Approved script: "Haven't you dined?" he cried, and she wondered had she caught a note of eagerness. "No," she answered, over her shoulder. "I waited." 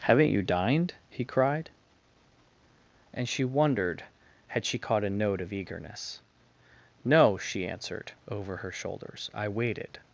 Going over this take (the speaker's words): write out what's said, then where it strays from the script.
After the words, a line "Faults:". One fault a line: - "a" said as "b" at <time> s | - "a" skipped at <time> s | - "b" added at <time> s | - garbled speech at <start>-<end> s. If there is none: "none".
"Haven't you dined?" he cried, and she wondered had she caught a note of eagerness. "No," she answered, over her shoulders. "I waited."
Faults:
- "shoulder" said as "shoulders" at 8.7 s